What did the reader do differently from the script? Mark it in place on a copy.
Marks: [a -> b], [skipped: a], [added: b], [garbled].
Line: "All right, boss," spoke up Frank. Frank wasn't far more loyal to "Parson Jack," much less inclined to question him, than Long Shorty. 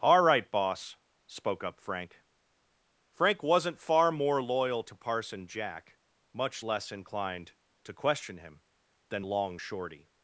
"All right, boss," spoke up Frank. Frank wasn't far more loyal to "Parson Jack," much less inclined to question him, than Long Shorty.